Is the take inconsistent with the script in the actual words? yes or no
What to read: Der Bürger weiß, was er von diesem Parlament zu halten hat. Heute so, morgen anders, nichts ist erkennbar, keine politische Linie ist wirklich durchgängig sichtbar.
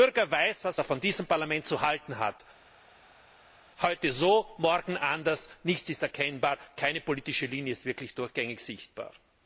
no